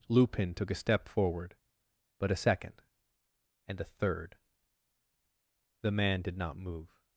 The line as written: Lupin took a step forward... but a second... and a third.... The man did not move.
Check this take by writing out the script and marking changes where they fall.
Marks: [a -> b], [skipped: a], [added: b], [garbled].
Lupin took a step forward... but a second... and a third.... The man did not move.